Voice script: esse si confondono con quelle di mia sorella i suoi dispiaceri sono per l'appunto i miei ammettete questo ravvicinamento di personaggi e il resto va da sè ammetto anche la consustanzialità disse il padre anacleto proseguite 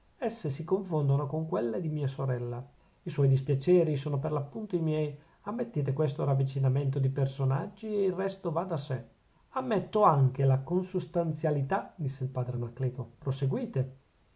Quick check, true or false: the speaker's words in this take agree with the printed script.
true